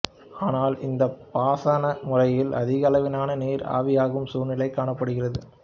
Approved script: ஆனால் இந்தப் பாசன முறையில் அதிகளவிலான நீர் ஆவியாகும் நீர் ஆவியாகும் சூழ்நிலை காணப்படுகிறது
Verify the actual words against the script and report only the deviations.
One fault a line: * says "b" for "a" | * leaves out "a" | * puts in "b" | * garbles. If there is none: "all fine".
* leaves out "நீர் ஆவியாகும்"